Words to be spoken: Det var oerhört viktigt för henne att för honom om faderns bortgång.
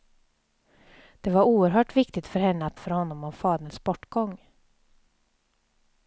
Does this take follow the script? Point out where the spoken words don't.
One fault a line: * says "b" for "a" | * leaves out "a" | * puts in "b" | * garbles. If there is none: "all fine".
all fine